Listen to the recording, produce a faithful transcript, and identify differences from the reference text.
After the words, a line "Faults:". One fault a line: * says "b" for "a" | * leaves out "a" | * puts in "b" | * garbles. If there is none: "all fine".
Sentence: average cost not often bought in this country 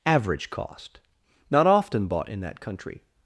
average cost not often bought in that country
Faults:
* says "that" for "this"